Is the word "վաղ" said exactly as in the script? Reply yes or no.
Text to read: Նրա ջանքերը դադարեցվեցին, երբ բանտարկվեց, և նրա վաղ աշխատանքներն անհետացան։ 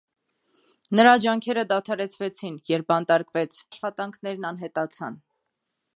no